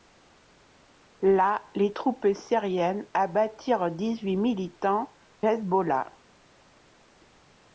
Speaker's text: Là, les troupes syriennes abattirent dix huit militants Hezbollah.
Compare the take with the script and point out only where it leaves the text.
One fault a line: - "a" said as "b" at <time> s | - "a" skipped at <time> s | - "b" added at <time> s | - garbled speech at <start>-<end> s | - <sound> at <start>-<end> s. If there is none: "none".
none